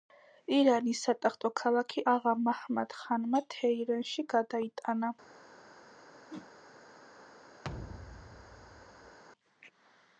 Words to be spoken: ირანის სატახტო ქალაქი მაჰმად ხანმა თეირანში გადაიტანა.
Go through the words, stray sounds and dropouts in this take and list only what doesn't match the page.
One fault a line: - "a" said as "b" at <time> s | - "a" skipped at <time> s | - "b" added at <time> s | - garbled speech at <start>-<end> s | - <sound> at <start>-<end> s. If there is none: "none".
- "აღა" added at 2.1 s
- whoosh at 6.3-6.5 s
- thud at 7.6-9.2 s